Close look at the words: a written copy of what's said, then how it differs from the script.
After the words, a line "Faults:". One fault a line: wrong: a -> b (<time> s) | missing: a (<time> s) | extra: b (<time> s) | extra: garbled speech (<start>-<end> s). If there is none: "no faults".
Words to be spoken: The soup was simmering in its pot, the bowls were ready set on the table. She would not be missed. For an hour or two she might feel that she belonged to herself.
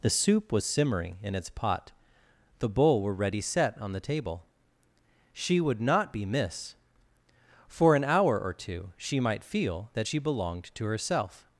The soup was simmering in its pot, the bowl were ready set on the table. She would not be miss. For an hour or two she might feel that she belonged to herself.
Faults:
wrong: bowls -> bowl (2.7 s)
wrong: missed -> miss (6.2 s)